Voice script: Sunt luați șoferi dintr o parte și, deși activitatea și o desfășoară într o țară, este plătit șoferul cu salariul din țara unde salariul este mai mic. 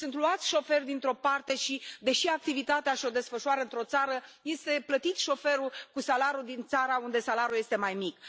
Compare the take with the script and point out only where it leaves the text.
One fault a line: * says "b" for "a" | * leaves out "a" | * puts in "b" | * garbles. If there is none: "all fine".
all fine